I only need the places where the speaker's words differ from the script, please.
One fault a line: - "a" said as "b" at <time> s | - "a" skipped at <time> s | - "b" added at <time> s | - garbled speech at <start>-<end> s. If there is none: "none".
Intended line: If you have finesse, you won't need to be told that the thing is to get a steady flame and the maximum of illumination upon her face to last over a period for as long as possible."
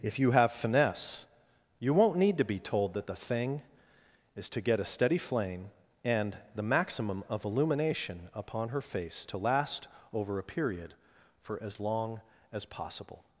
none